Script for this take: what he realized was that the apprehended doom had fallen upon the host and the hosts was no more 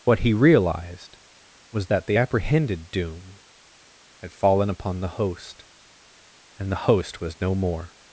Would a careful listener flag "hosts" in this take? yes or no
yes